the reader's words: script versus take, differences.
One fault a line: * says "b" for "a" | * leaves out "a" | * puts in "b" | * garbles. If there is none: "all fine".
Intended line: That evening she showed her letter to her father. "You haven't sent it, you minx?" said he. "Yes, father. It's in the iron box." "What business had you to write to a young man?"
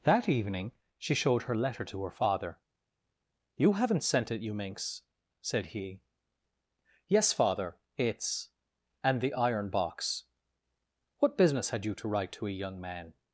* says "and" for "in"